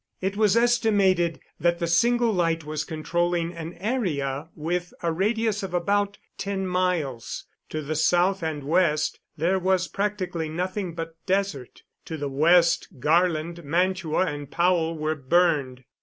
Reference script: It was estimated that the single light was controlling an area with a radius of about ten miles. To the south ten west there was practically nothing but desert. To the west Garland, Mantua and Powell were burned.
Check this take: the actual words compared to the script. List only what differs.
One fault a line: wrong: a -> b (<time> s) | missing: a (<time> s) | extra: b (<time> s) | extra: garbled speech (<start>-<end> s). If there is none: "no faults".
wrong: ten -> and (8.4 s)